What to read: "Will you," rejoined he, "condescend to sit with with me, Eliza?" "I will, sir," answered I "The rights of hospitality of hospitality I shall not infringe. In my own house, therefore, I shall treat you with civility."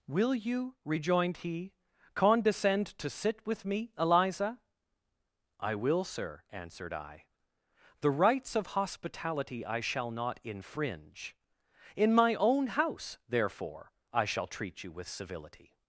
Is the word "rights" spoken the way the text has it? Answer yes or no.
yes